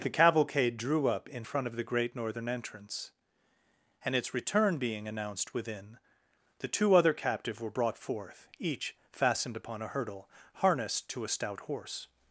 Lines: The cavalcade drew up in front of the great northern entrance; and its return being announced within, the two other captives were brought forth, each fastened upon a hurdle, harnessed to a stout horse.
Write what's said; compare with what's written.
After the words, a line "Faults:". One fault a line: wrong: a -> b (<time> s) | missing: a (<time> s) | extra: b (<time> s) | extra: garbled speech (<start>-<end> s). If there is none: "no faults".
The cavalcade drew up in front of the great northern entrance; and its return being announced within, the two other captive were brought forth, each fastened upon a hurdle, harnessed to a stout horse.
Faults:
wrong: captives -> captive (7.1 s)